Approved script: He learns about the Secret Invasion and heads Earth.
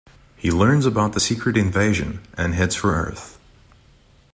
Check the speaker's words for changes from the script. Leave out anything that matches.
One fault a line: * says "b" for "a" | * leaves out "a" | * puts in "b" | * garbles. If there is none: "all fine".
* puts in "for"